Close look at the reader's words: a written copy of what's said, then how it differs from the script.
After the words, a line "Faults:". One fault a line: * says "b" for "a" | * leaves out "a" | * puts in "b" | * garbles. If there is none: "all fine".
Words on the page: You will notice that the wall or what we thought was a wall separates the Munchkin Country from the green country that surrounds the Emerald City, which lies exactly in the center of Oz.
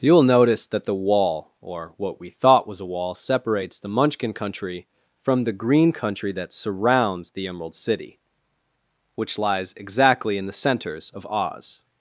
You will notice that the wall or what we thought was a wall separates the Munchkin Country from the green country that surrounds the Emerald City, which lies exactly in the centers of Oz.
Faults:
* says "centers" for "center"